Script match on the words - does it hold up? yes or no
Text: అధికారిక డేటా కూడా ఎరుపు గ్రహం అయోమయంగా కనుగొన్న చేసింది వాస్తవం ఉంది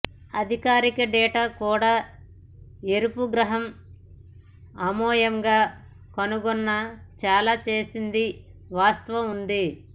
no